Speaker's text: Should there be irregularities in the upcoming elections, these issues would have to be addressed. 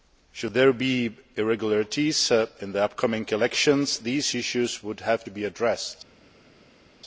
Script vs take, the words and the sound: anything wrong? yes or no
no